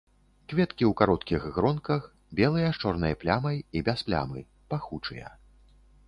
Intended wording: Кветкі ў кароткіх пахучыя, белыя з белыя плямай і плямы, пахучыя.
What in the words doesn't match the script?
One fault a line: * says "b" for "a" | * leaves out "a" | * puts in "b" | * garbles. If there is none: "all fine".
* says "гронках" for "пахучыя"
* says "чорнай" for "белыя"
* puts in "без"